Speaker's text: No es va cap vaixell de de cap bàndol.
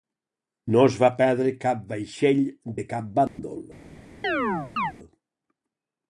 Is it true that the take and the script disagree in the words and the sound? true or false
true